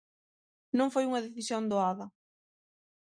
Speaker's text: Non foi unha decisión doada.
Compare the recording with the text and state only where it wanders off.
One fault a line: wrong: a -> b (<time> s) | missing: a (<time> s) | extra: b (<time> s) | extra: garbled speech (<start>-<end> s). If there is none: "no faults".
no faults